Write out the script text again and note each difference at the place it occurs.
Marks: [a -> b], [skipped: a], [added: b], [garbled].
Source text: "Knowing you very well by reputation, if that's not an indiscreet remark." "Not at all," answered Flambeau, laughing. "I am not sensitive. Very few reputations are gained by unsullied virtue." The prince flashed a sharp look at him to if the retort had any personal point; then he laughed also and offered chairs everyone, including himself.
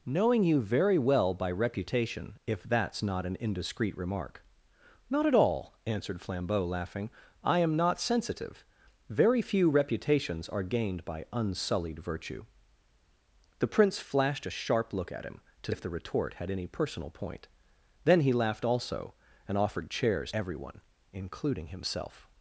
"Knowing you very well by reputation, if that's not an indiscreet remark." "Not at all," answered Flambeau, laughing. "I am not sensitive. Very few reputations are gained by unsullied virtue." The prince flashed a sharp look at him to if the retort had any personal point; then he laughed also and offered chairs everyone, including himself.